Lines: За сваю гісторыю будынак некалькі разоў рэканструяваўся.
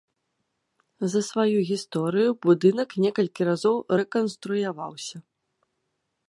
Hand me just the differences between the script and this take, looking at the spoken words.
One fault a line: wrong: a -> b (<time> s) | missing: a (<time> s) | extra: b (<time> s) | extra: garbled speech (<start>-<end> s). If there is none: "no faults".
no faults